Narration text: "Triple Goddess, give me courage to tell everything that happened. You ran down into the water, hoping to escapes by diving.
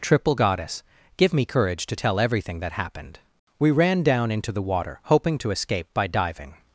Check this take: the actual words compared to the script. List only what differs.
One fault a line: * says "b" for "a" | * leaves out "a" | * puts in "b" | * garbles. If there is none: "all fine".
* says "We" for "You"
* says "escape" for "escapes"